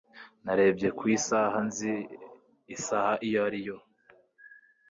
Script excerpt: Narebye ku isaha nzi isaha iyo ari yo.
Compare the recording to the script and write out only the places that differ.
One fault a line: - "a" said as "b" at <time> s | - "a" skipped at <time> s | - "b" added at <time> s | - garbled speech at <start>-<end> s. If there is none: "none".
none